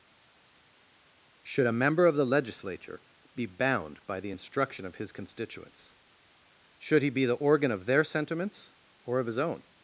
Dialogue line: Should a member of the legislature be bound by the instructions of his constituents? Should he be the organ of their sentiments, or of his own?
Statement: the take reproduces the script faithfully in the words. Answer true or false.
false